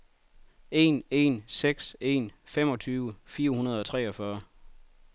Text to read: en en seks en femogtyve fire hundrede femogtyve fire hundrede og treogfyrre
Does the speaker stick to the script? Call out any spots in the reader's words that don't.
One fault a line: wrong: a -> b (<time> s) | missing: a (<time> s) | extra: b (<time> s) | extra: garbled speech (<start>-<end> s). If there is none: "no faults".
missing: femogtyve fire hundrede (3.8 s)